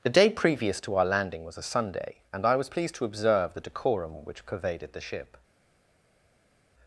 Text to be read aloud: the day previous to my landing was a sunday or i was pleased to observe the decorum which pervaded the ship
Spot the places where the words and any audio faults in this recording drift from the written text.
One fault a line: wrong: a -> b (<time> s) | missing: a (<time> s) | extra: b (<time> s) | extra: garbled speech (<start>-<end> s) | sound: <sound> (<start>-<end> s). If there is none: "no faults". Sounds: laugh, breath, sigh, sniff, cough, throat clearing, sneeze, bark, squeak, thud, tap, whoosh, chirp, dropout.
wrong: my -> our (0.9 s)
wrong: or -> and (2.3 s)